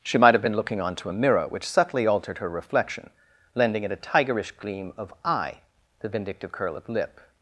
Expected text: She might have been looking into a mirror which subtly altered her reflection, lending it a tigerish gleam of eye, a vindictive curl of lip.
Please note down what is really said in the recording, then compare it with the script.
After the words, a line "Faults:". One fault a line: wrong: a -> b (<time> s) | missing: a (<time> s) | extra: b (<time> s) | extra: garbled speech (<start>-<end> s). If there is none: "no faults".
She might have been looking onto a mirror which subtly altered her reflection, lending it a tigerish gleam of eye, the vindictive curl of lip.
Faults:
wrong: into -> onto (0.8 s)
wrong: a -> the (6.0 s)